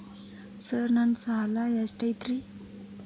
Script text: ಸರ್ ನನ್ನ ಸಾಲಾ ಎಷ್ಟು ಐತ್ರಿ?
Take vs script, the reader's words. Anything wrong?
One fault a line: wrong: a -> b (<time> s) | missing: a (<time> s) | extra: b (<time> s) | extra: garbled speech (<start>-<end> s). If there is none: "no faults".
no faults